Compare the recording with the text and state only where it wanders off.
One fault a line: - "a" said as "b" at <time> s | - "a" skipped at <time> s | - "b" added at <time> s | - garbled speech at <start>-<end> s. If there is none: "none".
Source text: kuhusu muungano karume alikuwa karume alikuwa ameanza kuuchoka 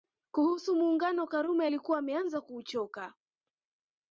- "karume alikuwa" skipped at 2.0 s